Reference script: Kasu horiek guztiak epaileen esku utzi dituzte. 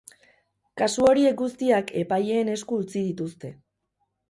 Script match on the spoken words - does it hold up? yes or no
yes